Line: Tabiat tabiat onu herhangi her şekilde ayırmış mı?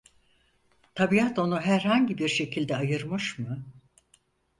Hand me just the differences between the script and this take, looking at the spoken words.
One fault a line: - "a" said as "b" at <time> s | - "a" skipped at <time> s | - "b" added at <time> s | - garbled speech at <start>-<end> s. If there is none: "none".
- "tabiat" skipped at 1.4 s
- "her" said as "bir" at 2.2 s